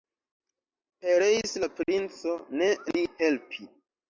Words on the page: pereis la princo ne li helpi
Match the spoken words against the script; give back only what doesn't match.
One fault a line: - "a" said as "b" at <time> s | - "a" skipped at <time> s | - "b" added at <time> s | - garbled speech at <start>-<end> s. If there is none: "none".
none